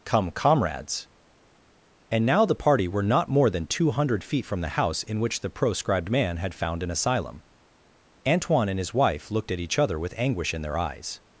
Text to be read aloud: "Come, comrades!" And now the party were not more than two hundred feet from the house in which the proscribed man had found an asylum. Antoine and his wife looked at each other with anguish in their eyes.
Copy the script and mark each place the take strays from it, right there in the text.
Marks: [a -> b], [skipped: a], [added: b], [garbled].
"Come, comrades!" And now the party were not more than two hundred feet from the house in which the proscribed man had found an asylum. Antoine and his wife looked at each other with anguish in their eyes.